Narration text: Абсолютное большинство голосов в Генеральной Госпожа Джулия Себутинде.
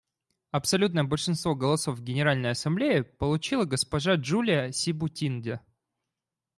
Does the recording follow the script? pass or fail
fail